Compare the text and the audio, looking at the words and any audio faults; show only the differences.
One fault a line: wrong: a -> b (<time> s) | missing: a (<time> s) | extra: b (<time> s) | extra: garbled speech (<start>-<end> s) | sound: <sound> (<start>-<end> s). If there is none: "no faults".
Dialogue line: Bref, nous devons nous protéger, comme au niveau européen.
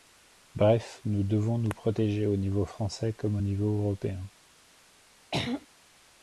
extra: au niveau français (2.2 s)
sound: throat clearing (5.3-5.7 s)